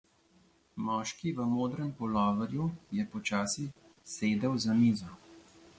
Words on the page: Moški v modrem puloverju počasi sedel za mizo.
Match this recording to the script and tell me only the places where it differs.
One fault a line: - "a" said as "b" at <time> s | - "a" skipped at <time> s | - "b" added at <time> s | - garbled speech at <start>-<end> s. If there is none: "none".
- "je" added at 2.9 s